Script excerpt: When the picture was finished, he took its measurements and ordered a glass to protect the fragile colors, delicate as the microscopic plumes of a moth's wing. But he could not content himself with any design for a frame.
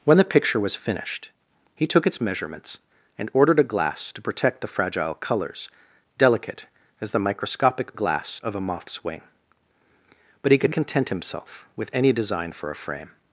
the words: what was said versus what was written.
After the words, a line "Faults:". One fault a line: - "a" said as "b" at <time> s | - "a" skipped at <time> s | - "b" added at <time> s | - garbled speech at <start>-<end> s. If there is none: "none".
When the picture was finished, he took its measurements and ordered a glass to protect the fragile colors, delicate as the microscopic glass of a moth's wing. But he could content himself with any design for a frame.
Faults:
- "plumes" said as "glass" at 7.9 s
- "not" skipped at 10.7 s